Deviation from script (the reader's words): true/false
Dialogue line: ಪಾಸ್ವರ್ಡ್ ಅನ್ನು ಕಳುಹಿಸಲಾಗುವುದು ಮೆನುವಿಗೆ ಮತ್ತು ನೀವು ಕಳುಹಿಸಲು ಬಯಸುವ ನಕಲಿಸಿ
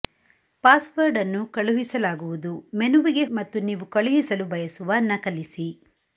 false